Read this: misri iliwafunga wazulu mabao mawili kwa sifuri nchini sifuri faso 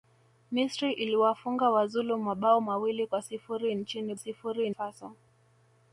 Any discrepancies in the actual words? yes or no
no